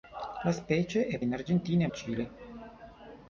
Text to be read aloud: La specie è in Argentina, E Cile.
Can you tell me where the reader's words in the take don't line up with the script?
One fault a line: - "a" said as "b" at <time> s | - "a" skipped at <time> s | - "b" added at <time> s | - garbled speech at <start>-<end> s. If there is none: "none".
none